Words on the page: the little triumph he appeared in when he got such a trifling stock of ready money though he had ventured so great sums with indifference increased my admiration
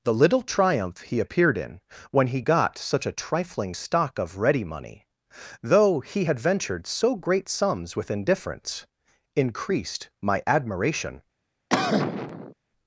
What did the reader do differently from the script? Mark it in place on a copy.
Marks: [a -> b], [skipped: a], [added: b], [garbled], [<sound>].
the little triumph he appeared in when he got such a trifling stock of ready money though he had ventured so great sums with indifference increased my admiration [cough]